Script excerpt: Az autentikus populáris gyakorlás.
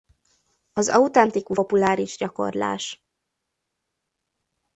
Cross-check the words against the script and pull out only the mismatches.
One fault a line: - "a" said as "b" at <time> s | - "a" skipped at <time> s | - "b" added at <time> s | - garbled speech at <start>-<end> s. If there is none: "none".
none